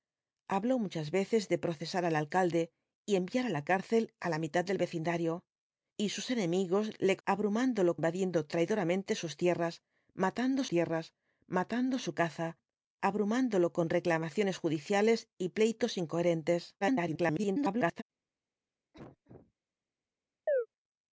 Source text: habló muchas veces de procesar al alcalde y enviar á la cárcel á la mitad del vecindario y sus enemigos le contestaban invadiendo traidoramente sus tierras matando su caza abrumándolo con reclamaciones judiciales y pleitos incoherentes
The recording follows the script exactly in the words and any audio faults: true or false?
false